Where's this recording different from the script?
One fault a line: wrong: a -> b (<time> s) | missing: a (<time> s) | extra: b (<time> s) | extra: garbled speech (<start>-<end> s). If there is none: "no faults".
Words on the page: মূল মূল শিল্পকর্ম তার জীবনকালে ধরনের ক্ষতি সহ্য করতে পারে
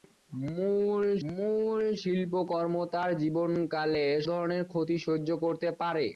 no faults